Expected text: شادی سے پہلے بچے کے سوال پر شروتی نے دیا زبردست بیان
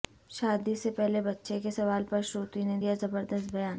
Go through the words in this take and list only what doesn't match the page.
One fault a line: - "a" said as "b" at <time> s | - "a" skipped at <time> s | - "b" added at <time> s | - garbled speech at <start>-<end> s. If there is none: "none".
none